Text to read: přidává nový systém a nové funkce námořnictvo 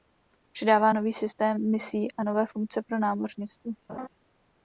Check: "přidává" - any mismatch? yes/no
no